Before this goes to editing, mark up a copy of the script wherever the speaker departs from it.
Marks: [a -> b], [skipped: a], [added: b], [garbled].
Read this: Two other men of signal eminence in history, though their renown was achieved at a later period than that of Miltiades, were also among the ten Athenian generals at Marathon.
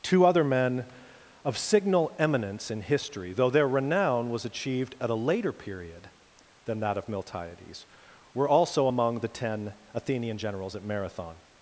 Two other men of signal eminence in history, though their renown was achieved at a later period than that of Miltiades, were also among the ten Athenian generals at Marathon.